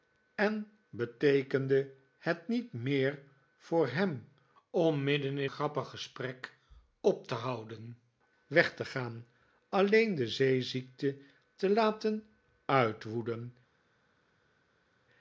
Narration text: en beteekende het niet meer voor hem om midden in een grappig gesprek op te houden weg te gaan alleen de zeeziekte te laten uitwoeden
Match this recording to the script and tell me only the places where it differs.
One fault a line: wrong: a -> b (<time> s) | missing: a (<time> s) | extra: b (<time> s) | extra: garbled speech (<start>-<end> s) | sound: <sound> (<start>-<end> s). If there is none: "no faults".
missing: een (5.5 s)